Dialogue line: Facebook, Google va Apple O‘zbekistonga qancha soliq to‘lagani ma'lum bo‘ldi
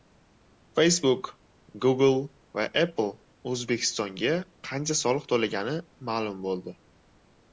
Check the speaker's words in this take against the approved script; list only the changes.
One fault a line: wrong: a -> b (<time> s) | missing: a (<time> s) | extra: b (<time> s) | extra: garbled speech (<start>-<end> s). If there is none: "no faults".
no faults